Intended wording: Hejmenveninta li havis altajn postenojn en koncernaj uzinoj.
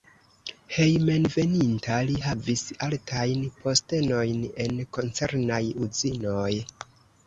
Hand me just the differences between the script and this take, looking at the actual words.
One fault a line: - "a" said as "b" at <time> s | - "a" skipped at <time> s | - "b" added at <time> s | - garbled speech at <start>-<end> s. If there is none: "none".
none